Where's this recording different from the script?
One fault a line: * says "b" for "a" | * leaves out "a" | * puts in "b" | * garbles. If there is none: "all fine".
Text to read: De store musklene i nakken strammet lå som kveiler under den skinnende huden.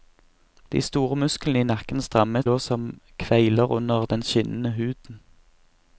all fine